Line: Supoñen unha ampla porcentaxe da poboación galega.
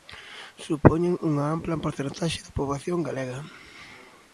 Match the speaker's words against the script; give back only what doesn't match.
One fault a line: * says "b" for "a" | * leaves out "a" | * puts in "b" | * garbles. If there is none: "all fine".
all fine